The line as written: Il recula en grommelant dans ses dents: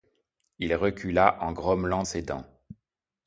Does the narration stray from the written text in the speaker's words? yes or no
yes